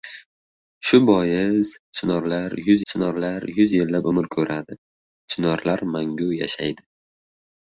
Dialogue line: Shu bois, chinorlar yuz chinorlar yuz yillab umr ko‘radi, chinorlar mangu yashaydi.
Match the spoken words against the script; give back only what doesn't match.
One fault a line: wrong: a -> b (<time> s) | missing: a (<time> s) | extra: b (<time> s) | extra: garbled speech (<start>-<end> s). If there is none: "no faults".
no faults